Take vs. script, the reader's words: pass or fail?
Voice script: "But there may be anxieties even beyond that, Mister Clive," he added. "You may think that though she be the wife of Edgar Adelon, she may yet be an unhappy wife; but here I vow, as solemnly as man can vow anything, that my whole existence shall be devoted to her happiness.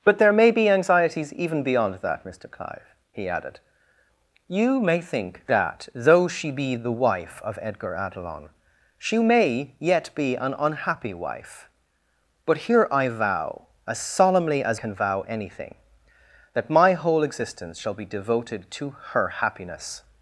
fail